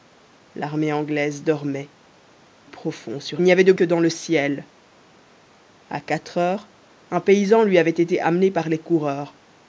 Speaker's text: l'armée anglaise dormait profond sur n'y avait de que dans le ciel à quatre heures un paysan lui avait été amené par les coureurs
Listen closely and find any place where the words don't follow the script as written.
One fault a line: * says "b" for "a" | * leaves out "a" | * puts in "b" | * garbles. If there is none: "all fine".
all fine